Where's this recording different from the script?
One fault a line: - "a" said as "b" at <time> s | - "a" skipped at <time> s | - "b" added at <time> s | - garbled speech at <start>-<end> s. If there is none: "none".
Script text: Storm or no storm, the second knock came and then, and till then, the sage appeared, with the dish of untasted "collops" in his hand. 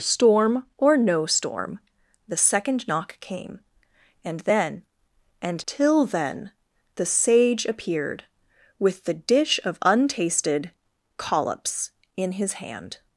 none